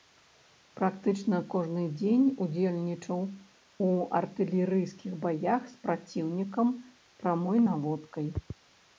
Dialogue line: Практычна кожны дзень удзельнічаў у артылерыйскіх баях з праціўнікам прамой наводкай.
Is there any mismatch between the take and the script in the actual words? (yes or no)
no